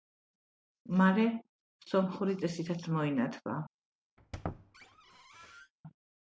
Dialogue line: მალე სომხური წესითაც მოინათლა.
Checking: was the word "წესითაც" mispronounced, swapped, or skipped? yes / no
no